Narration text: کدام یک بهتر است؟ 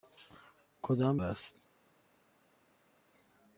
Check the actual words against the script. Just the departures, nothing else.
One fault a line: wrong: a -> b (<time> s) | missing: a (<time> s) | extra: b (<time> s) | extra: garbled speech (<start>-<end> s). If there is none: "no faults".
missing: یک بهتر (1.2 s)